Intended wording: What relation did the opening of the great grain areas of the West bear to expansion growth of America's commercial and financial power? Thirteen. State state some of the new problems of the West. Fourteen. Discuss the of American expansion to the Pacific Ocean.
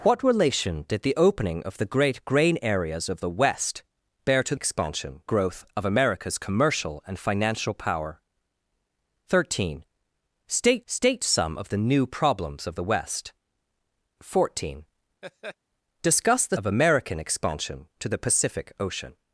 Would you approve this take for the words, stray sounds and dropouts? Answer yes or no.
no